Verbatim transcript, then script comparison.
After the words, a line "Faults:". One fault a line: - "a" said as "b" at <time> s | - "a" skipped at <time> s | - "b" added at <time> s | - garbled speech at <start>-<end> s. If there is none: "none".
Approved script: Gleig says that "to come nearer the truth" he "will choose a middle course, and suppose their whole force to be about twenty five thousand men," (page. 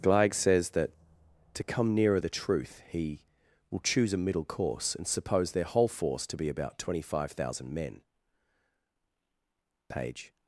Gleig says that "to come nearer the truth" he "will choose a middle course, and suppose their whole force to be about twenty five thousand men," (page.
Faults:
none